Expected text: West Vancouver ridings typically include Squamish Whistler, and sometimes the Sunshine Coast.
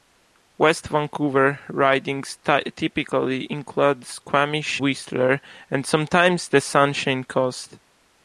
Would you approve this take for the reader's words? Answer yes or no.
yes